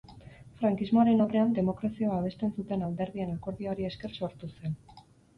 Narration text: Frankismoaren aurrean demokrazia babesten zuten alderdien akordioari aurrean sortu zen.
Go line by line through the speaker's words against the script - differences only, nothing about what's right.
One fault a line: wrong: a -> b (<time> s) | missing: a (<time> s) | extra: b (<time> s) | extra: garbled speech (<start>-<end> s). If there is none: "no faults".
wrong: aurrean -> esker (3.9 s)